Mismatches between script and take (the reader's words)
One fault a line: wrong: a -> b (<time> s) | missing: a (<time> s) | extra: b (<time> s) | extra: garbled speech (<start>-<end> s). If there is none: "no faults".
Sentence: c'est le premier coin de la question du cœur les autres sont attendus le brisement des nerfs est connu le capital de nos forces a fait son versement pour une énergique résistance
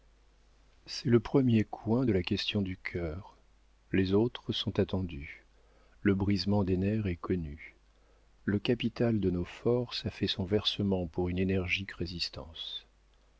no faults